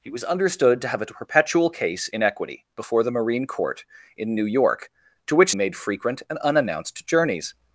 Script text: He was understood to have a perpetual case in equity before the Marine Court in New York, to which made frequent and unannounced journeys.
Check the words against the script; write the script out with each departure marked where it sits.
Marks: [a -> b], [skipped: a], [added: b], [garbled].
He was understood to have a perpetual case in equity before the Marine Court in New York, to which made frequent and unannounced journeys.